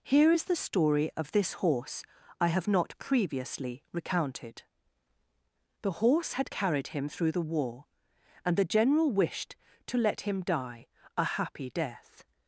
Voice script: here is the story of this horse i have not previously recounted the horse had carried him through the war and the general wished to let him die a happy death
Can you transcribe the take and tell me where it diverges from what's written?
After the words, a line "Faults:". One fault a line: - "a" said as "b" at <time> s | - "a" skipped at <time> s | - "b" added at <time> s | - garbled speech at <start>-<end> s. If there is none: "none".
here is the story of this horse i have not previously recounted the horse had carried him through the war and the general wished to let him die a happy death
Faults:
none